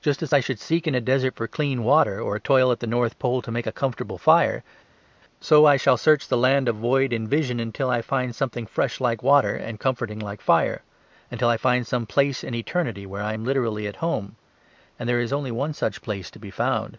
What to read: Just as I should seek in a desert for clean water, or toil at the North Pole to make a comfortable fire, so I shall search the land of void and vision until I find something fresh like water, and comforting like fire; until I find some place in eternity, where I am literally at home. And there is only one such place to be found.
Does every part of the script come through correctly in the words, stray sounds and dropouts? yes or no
yes